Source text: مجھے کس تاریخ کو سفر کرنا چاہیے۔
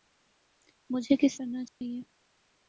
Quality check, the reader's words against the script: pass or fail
fail